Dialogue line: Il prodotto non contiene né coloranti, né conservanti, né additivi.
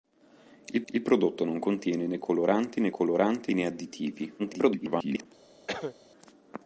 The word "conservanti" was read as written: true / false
false